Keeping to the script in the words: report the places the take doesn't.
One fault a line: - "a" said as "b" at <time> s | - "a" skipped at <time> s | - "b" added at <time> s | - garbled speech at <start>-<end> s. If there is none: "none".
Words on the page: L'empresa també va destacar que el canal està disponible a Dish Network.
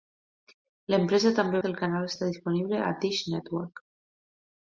- "va destacar" skipped at 1.6 s